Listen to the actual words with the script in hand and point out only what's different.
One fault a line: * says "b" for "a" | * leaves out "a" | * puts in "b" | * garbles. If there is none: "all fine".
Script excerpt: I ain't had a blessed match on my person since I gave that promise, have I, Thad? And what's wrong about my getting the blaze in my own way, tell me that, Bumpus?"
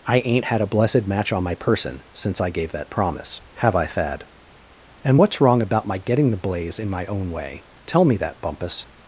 all fine